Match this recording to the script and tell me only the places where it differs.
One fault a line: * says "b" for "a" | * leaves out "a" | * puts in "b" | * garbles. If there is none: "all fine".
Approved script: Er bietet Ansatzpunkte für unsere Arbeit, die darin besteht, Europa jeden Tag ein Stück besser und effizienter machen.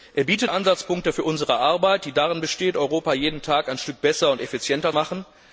all fine